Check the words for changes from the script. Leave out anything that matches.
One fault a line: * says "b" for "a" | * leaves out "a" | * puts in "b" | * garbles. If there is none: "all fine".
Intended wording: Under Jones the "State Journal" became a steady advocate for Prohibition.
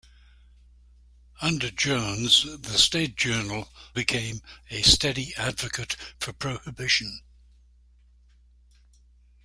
all fine